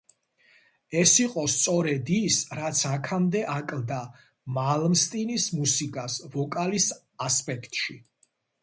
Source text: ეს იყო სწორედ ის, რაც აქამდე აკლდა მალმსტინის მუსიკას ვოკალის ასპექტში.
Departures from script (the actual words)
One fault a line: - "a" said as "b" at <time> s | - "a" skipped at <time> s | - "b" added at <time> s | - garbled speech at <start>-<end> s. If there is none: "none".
none